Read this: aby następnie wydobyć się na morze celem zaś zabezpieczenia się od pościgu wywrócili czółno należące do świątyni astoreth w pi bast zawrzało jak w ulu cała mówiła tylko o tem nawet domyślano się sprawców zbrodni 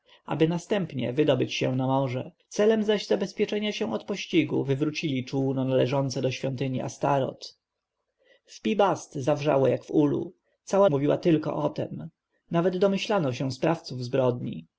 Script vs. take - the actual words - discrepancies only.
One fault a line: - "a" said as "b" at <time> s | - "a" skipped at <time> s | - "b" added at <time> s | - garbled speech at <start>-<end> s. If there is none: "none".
none